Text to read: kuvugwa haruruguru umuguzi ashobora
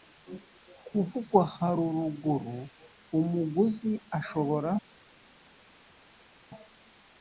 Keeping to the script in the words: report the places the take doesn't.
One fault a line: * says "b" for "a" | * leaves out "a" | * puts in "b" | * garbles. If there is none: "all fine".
all fine